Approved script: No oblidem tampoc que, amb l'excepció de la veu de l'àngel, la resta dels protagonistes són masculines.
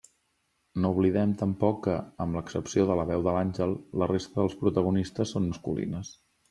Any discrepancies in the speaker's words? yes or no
no